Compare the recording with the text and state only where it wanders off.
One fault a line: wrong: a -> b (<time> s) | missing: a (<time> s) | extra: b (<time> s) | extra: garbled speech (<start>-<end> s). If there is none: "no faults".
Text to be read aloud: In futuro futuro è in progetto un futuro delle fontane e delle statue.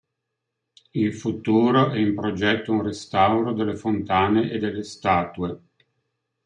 missing: futuro (1.9 s)
wrong: futuro -> restauro (2.8 s)